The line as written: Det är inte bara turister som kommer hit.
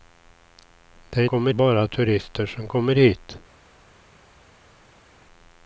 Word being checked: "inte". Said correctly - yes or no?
no